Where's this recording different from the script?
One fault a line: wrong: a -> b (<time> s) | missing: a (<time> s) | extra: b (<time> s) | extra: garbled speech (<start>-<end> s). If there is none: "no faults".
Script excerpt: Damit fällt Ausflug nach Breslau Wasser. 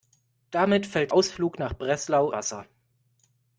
no faults